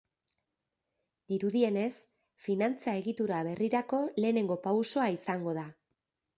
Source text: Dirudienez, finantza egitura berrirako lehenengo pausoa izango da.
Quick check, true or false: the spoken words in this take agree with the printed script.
true